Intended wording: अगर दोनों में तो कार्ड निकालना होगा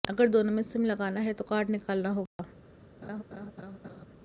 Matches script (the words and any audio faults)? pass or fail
fail